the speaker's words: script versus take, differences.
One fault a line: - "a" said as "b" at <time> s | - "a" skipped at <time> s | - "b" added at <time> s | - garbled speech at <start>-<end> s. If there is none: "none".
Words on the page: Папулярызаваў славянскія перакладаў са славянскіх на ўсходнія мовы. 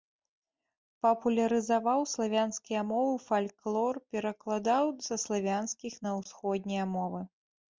- "мовы фальклор" added at 2.9 s